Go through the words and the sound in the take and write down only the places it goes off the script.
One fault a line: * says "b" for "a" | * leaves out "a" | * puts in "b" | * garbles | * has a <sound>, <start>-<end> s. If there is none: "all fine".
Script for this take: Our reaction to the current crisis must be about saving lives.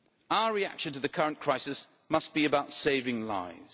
all fine